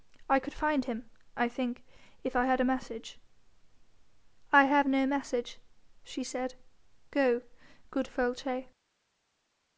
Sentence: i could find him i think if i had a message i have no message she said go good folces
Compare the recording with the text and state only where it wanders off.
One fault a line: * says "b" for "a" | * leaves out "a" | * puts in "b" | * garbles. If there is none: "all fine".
all fine